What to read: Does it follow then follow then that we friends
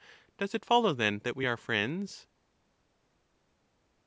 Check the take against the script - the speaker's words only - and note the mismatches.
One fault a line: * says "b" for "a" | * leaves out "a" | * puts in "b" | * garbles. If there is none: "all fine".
* leaves out "follow then"
* puts in "are"